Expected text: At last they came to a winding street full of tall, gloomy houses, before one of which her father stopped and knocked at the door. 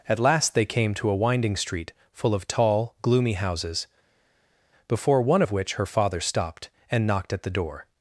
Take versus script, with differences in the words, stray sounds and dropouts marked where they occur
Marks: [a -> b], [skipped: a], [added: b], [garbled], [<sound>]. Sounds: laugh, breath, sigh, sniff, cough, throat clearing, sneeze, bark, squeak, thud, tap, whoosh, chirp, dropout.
At last they came to a winding street full of tall, gloomy houses, before one of which her father stopped and knocked at the door.